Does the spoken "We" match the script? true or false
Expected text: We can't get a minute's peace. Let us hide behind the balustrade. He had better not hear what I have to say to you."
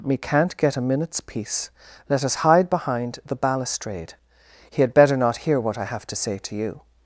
false